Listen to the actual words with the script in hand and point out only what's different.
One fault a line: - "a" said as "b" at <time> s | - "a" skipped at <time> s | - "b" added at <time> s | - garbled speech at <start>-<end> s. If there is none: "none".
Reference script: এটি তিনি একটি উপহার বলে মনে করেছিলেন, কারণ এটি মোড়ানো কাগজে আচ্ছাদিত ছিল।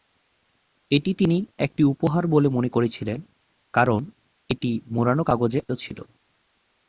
- "আচ্ছাদিত" skipped at 5.6 s